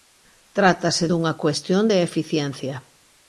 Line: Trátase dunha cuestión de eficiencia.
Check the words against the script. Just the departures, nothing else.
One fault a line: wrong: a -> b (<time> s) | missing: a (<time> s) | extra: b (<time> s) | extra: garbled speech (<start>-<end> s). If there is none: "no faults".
no faults